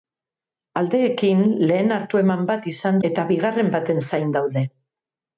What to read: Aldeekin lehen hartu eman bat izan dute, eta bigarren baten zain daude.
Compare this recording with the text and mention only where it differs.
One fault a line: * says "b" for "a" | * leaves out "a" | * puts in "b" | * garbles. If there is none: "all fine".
* leaves out "dute"